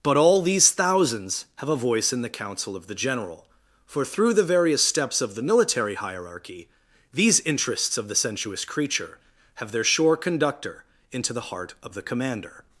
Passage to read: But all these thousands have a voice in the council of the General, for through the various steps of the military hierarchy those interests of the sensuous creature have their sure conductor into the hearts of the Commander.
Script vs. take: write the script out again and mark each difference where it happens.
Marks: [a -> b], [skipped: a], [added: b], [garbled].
But all these thousands have a voice in the council of the General, for through the various steps of the military hierarchy [those -> these] interests of the sensuous creature have their sure conductor into the [hearts -> heart] of the Commander.